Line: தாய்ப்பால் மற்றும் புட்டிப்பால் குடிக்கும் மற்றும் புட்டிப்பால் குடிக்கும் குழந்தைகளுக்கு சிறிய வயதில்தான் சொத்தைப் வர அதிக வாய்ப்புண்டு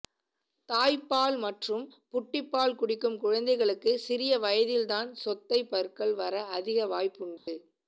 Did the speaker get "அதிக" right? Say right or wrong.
right